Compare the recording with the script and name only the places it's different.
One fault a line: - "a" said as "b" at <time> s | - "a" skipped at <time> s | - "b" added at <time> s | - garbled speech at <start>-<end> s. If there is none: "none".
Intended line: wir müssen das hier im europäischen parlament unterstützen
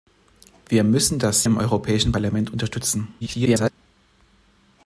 - "hier" skipped at 1.4 s
- garbled speech at 3.2-3.7 s